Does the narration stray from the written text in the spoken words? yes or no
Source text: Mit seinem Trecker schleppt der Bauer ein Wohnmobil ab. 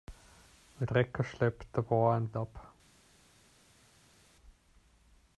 yes